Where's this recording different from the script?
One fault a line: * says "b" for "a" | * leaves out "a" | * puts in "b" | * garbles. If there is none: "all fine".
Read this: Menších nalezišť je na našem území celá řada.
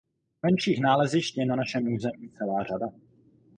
all fine